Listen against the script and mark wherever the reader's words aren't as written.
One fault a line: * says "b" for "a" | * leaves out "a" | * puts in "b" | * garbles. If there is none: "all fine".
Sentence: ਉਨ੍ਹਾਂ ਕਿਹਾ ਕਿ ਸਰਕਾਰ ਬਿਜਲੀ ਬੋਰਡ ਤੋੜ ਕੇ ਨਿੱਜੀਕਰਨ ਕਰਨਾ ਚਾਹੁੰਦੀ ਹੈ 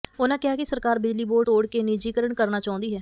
all fine